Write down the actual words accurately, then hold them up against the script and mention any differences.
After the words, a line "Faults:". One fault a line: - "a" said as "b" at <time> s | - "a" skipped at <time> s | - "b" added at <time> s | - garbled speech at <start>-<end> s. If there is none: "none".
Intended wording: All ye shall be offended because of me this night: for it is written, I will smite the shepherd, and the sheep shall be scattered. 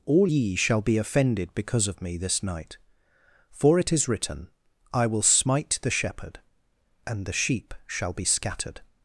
All ye shall be offended because of me this night: for it is written, I will smite the shepherd, and the sheep shall be scattered.
Faults:
none